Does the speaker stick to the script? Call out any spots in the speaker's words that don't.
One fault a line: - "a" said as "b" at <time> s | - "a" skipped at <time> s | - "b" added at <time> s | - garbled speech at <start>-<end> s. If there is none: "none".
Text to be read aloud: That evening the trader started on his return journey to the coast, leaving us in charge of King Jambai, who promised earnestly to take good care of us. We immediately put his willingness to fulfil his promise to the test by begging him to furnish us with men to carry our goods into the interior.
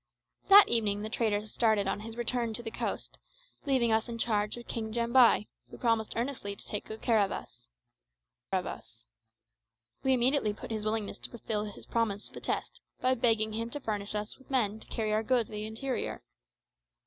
- "journey" skipped at 2.5 s
- "of us" added at 8.5 s
- "into" skipped at 15.5 s